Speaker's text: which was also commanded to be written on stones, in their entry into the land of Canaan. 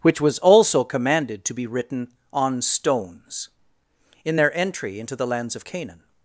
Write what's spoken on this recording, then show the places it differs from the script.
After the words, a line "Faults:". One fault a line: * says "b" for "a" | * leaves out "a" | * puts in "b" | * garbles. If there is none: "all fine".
which was also commanded to be written on stones, in their entry into the lands of Canaan.
Faults:
* says "lands" for "land"